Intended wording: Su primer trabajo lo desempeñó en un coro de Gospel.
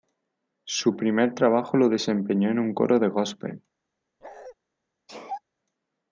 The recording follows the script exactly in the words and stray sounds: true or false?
false